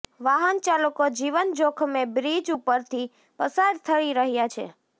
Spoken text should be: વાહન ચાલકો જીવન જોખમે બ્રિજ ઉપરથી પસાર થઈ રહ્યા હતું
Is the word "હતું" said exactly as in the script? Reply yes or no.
no